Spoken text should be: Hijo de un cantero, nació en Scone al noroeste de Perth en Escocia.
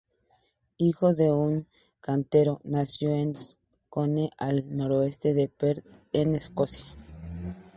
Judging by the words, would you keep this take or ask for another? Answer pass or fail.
pass